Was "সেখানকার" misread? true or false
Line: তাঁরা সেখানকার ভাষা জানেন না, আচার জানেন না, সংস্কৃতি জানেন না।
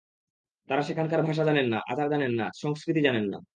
false